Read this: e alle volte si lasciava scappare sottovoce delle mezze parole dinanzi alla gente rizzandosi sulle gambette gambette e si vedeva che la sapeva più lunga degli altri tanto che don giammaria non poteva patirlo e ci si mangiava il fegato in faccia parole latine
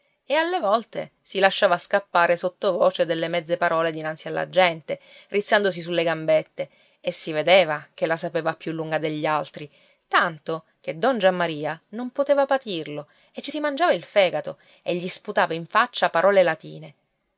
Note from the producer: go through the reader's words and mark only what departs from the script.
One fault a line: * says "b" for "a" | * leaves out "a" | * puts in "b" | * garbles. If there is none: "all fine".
* leaves out "gambette"
* puts in "e gli sputava"